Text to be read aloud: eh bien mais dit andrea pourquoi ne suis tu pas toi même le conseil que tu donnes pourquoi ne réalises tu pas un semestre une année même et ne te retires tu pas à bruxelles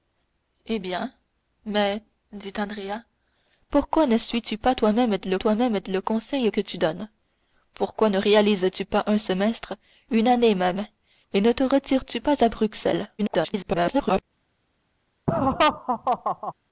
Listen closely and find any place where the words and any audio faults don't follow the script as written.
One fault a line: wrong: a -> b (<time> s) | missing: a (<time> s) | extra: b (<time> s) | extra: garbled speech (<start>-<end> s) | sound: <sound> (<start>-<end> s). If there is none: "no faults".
extra: toi même le (5.4 s)
extra: garbled speech (13.2-14.2 s)
sound: laugh (15.3-16.5 s)